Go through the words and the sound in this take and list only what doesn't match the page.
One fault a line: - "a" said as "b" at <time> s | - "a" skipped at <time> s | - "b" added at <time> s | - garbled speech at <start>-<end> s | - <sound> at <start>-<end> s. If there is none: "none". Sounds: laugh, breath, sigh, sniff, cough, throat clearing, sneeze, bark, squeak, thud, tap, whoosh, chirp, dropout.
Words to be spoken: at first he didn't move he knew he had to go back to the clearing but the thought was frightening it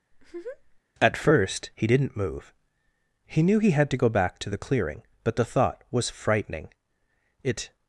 - laugh at 0.1-0.8 s